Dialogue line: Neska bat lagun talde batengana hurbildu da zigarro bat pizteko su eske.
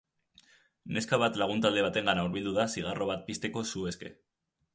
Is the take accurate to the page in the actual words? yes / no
yes